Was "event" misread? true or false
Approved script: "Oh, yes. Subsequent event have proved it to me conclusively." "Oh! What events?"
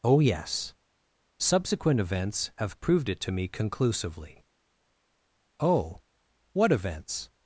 true